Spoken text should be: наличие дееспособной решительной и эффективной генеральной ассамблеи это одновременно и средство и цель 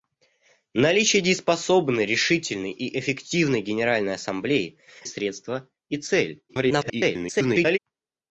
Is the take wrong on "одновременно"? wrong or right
wrong